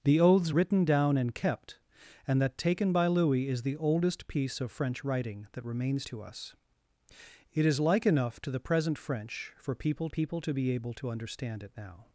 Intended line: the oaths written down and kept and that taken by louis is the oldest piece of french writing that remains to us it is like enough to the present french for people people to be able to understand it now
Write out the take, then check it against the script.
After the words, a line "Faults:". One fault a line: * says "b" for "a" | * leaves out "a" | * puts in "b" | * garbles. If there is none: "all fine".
the oaths written down and kept and that taken by louis is the oldest piece of french writing that remains to us it is like enough to the present french for people people to be able to understand it now
Faults:
all fine